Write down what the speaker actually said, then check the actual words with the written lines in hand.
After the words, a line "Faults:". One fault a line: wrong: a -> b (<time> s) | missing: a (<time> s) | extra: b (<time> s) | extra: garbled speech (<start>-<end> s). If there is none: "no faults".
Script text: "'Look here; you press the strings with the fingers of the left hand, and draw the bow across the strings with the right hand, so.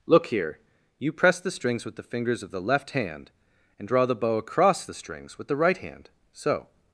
"'Look here; you press the strings with the fingers of the left hand, and draw the bow across the strings with the right hand, so.
Faults:
no faults